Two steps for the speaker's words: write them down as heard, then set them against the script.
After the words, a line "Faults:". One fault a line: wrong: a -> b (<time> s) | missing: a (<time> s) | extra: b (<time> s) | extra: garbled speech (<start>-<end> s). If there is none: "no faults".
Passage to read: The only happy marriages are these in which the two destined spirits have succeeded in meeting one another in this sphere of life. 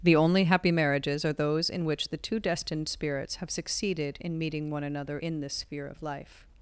The only happy marriages are those in which the two destined spirits have succeeded in meeting one another in this sphere of life.
Faults:
wrong: these -> those (1.3 s)